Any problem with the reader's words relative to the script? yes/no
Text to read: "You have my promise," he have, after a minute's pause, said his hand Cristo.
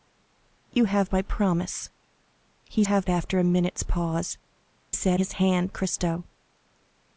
no